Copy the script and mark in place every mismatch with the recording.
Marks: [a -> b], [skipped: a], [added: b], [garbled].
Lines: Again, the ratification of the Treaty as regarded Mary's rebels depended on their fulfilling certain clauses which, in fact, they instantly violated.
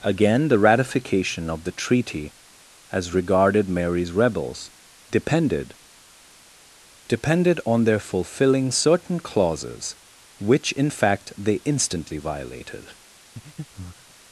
Again, the ratification of the Treaty as regarded Mary's rebels depended [added: depended] on their fulfilling certain clauses which, in fact, they instantly violated.